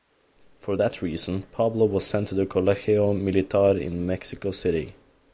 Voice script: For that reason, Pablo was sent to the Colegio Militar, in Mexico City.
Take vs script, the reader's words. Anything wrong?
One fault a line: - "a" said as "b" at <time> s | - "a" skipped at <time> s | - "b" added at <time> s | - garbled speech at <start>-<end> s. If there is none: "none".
none